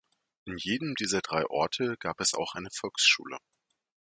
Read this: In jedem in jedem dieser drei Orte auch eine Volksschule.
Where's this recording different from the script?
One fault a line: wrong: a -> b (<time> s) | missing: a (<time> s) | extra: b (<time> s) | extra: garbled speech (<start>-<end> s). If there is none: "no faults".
missing: in jedem (0.9 s)
extra: gab es (2.0 s)